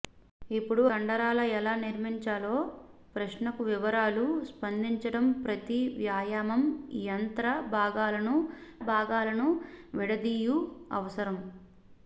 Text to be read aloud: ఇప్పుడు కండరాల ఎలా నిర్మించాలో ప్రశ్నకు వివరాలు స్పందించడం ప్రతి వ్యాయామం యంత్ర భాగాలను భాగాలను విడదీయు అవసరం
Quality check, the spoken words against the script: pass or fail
pass